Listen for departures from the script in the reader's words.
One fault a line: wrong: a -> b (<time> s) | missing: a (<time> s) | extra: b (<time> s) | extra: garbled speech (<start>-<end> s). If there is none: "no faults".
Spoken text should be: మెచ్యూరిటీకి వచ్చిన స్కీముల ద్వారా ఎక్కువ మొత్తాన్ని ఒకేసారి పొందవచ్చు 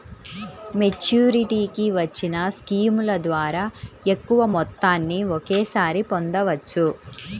no faults